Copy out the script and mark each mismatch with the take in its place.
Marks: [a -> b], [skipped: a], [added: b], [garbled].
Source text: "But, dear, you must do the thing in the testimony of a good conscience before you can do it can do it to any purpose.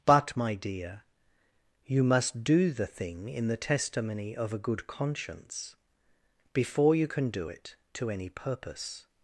"But, [added: my] dear, you must do the thing in the testimony of a good conscience before you can do it [skipped: can do it] to any purpose.